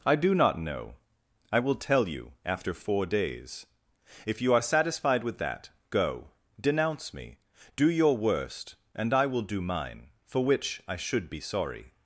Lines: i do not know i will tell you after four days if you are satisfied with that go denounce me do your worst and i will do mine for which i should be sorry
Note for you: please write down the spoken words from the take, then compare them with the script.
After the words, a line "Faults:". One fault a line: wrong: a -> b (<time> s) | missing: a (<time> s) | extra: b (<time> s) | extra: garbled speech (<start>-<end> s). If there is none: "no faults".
i do not know i will tell you after four days if you are satisfied with that go denounce me do your worst and i will do mine for which i should be sorry
Faults:
no faults